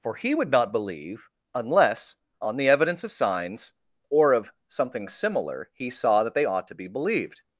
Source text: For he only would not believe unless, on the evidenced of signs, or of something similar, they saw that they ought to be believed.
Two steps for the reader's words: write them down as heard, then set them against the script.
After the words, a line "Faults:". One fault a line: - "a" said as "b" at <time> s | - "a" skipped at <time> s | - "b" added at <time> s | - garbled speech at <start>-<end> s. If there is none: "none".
For he would not believe unless, on the evidence of signs, or of something similar, he saw that they ought to be believed.
Faults:
- "only" skipped at 0.3 s
- "evidenced" said as "evidence" at 2.7 s
- "they" said as "he" at 5.7 s